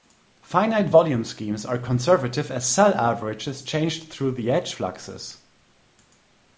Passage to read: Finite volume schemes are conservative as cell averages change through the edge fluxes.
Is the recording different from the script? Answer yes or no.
no